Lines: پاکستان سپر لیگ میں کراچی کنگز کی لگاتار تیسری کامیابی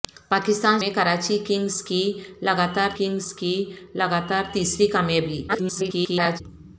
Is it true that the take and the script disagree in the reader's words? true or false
true